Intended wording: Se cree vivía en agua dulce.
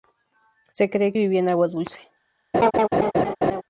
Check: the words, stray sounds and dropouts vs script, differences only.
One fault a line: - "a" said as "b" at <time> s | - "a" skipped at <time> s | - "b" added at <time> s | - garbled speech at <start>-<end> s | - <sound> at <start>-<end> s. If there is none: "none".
- laugh at 2.5-3.6 s